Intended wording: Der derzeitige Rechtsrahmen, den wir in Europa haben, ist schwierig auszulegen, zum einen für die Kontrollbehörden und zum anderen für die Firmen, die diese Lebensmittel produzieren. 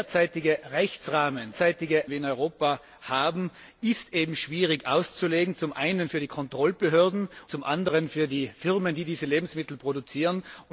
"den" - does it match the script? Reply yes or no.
no